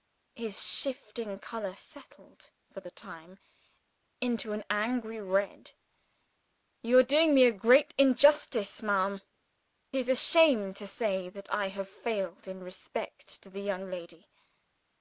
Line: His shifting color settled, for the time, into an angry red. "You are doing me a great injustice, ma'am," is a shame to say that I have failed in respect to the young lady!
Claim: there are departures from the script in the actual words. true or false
false